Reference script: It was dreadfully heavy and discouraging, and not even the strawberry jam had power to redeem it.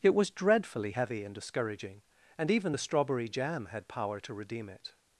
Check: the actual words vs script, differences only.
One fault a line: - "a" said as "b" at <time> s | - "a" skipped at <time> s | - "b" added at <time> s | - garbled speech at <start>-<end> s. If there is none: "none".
- "not" skipped at 2.5 s